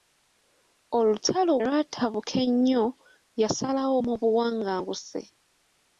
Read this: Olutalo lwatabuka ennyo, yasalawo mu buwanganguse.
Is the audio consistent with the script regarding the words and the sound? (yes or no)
yes